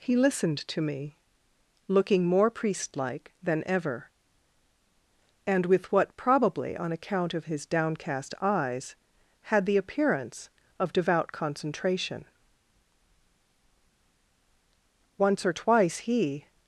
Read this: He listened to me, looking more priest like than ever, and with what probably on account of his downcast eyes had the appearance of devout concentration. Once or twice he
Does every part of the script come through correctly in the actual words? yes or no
yes